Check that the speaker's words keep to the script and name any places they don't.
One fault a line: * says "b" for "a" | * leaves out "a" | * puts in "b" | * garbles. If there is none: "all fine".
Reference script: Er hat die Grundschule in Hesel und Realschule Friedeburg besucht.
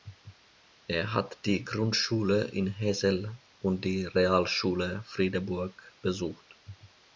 * puts in "die"